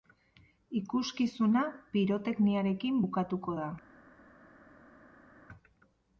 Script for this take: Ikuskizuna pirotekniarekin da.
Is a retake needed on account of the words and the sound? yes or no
yes